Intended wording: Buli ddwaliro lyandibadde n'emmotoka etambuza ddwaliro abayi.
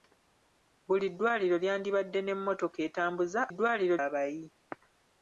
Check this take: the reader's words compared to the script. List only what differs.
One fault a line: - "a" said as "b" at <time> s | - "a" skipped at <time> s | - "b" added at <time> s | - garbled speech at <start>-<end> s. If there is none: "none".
none